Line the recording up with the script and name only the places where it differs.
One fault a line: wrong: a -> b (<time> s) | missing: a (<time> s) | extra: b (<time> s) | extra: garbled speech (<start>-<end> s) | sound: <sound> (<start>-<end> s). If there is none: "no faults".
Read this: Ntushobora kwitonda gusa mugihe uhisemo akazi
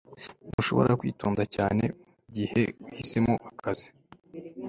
sound: dropout (0.5-0.6 s)
wrong: gusa -> cyane (1.5 s)